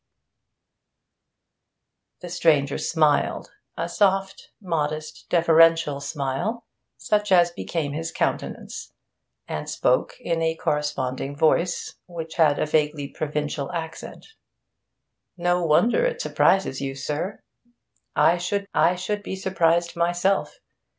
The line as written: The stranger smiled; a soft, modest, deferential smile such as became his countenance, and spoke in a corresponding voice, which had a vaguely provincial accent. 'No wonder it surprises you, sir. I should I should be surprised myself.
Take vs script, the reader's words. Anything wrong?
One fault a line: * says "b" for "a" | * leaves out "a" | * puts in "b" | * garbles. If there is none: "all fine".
all fine